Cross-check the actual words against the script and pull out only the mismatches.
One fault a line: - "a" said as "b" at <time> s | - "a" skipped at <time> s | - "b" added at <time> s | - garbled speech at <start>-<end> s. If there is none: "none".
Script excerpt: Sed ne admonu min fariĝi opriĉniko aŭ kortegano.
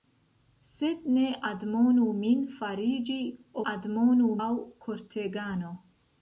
- "opriĉniko" said as "admonu" at 3.7 s